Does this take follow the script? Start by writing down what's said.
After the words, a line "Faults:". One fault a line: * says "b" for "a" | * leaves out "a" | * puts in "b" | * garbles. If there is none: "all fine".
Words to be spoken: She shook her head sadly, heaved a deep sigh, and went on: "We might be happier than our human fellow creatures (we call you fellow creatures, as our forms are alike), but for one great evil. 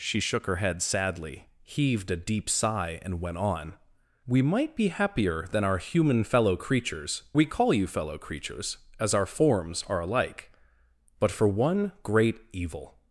She shook her head sadly, heaved a deep sigh, and went on: "We might be happier than our human fellow creatures (we call you fellow creatures, as our forms are alike), but for one great evil.
Faults:
all fine